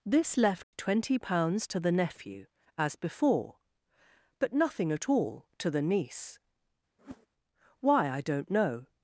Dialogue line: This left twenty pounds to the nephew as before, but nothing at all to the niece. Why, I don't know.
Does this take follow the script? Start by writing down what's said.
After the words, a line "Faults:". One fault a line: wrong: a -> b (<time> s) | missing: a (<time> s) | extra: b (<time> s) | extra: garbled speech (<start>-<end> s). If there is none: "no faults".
This left twenty pounds to the nephew as before, but nothing at all to the niece. Why, I don't know.
Faults:
no faults